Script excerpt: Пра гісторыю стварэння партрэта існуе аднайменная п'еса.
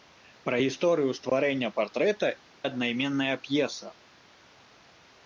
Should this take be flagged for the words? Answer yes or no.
yes